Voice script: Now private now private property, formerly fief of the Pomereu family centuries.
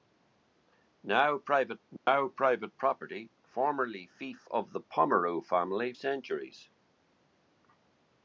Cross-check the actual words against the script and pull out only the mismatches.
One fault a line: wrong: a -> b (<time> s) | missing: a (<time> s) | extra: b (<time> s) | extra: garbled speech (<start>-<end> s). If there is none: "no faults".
no faults